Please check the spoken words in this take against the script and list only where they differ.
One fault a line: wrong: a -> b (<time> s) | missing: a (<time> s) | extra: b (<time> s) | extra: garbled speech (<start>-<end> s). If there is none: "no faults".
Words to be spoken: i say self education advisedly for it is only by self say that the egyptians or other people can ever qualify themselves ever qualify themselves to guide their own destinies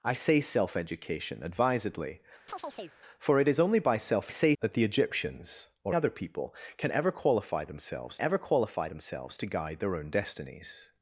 no faults